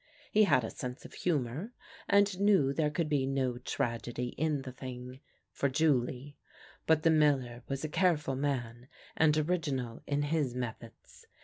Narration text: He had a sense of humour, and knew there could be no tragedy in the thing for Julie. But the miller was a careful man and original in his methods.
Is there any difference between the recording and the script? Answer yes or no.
no